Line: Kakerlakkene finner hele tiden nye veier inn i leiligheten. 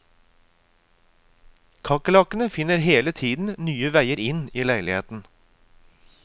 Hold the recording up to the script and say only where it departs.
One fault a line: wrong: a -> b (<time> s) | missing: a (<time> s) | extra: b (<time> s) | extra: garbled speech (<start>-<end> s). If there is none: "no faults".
no faults